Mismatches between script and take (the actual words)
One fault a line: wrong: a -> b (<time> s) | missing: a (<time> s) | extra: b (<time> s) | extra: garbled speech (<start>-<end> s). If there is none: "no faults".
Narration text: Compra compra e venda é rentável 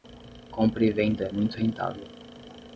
missing: compra (0.8 s)
extra: muito (1.3 s)